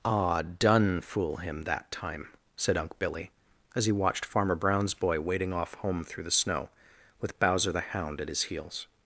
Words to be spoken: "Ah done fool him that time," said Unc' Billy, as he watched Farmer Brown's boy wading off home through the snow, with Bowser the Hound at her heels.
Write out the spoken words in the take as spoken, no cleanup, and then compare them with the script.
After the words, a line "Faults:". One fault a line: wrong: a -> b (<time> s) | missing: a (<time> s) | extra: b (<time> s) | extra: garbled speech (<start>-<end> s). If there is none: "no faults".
"Ah done fool him that time," said Unc' Billy, as he watched Farmer Brown's boy wading off home through the snow, with Bowser the Hound at his heels.
Faults:
wrong: her -> his (8.3 s)